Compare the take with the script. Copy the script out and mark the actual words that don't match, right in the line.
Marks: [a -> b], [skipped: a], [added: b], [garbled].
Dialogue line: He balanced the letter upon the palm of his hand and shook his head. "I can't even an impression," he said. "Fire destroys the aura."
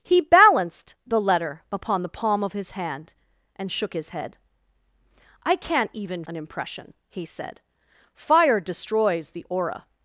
He balanced the letter upon the palm of his hand and shook his head. "I can't even an impression," he said. "Fire destroys the aura."